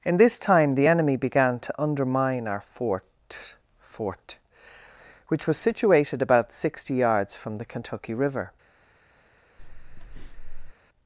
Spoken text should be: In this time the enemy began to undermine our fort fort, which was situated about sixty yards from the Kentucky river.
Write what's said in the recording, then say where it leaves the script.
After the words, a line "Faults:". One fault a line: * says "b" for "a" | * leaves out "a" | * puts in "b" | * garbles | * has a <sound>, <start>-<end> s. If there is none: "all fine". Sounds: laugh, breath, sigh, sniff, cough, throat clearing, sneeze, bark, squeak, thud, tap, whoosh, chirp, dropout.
In this time the enemy began to undermine our fort fort, which was situated about sixty yards from the Kentucky river.
Faults:
* has a breath, 9.6-10.7 s